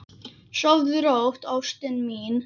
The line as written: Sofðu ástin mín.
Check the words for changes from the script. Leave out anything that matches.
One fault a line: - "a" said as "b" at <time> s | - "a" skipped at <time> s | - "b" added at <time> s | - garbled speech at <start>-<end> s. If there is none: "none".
- "rótt" added at 1.1 s